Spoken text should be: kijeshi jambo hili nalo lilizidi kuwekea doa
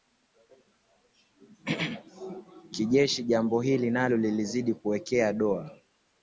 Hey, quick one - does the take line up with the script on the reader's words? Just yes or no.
yes